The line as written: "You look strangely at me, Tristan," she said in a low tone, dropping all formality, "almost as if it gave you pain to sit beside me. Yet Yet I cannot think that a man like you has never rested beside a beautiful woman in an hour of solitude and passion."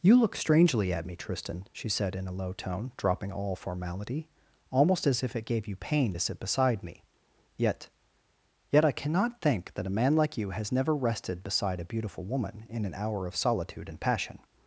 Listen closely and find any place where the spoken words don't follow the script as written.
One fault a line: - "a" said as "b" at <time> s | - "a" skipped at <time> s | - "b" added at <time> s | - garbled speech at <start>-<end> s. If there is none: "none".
none